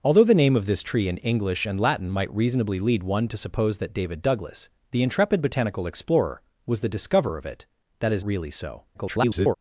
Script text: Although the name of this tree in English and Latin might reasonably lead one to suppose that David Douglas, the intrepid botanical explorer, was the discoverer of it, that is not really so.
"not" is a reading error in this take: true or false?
true